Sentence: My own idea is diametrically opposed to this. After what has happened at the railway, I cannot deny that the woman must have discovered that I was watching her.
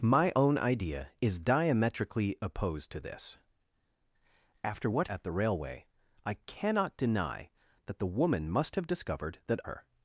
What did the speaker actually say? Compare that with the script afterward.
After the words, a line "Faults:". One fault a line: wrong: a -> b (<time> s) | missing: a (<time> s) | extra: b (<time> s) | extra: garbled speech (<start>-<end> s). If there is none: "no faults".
My own idea is diametrically opposed to this. After what at the railway, I cannot deny that the woman must have discovered that her.
Faults:
missing: has happened (5.1 s)
missing: I was watching (9.6 s)